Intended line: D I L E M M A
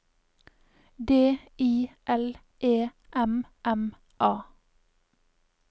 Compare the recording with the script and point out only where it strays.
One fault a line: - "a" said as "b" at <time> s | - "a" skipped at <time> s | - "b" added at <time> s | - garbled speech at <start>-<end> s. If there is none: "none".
none